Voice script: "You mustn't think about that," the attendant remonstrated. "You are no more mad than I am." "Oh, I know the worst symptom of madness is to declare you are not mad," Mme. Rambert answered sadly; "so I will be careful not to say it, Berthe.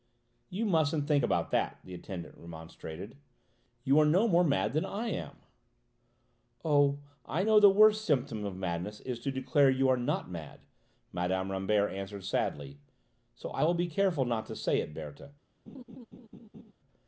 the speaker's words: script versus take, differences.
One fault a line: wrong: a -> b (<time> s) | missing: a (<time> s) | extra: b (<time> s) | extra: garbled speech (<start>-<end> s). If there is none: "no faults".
no faults